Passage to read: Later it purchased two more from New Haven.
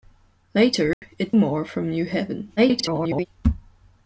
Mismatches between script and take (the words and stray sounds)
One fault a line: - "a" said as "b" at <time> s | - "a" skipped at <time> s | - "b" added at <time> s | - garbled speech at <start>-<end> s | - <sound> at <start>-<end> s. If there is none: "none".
- dropout at 0.9-1.0 s
- "purchased two" skipped at 1.3 s
- garbled speech at 2.6-3.3 s